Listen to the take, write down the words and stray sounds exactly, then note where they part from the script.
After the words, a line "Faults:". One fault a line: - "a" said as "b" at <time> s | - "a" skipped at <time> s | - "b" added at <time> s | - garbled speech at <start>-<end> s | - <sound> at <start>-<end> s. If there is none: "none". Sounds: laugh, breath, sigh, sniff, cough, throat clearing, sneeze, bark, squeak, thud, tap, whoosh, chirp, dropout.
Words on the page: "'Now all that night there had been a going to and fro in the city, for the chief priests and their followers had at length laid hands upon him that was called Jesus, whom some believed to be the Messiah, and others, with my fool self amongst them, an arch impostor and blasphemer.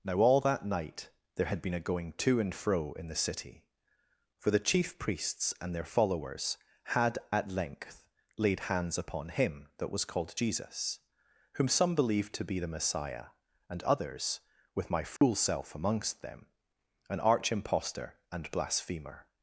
"'Now all that night there had been a going to and fro in the city, for the chief priests and their followers had at length laid hands upon him that was called Jesus, whom some believed to be the Messiah, and others, with my fool self amongst them, an arch impostor and blasphemer.
Faults:
- dropout at 15.2-15.2 s